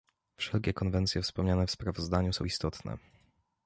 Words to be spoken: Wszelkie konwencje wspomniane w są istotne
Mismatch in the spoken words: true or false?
true